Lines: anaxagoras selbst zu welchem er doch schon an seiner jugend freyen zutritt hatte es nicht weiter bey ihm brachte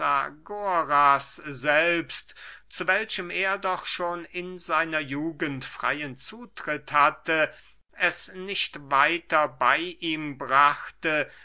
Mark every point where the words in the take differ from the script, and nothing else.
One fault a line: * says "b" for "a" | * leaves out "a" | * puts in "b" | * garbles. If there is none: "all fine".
* says "in" for "an"